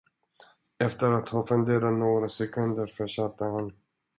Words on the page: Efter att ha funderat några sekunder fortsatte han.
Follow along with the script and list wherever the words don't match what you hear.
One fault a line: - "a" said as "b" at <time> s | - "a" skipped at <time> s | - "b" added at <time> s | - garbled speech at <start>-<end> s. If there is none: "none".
none